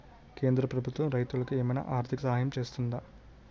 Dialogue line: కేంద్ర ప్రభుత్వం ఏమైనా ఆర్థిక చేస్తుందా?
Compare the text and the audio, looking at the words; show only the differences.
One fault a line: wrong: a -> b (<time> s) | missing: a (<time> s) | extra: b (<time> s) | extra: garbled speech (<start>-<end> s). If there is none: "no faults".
extra: రైతులకు (1.1 s)
extra: సాయం (2.2 s)